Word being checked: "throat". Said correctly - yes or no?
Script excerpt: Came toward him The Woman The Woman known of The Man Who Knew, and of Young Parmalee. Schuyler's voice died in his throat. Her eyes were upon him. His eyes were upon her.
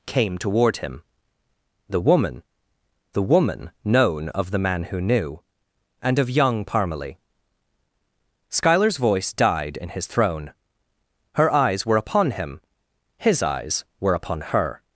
no